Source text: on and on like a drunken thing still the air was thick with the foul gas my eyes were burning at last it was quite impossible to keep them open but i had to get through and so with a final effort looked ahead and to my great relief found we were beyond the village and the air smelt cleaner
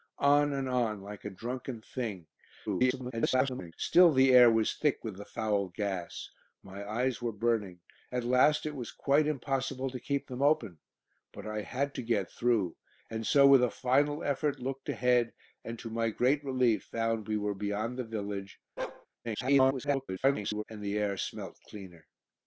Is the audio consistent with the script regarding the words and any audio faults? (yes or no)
no